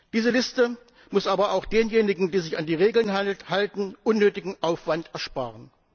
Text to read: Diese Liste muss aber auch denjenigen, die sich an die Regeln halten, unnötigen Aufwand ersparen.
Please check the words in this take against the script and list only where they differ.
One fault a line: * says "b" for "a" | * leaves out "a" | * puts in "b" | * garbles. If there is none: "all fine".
all fine